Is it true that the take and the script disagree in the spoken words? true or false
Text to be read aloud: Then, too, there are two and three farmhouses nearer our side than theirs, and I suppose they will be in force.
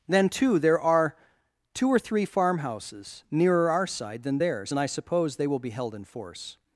true